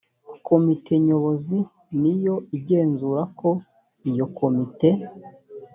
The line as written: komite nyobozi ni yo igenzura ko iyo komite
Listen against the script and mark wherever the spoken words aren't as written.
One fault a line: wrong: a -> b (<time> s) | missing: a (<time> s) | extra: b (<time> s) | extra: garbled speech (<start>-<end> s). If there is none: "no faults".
no faults